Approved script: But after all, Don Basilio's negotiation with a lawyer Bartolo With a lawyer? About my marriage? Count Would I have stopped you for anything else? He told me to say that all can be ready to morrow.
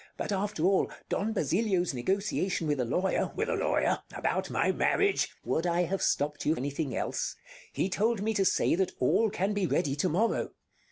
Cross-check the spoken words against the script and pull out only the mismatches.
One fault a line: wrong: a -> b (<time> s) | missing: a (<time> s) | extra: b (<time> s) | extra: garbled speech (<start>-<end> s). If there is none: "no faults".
missing: for (6.5 s)